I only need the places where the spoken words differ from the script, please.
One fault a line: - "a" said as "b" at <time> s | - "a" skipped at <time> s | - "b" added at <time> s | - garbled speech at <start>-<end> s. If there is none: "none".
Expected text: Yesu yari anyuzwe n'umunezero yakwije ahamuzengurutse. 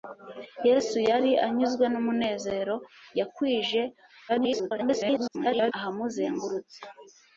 - garbled speech at 4.3-5.7 s